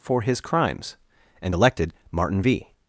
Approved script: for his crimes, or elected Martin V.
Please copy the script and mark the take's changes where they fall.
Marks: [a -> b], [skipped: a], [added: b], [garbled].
for his crimes, [or -> and] elected Martin V.